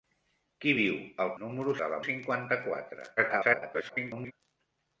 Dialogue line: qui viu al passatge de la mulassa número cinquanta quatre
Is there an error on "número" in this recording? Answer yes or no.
yes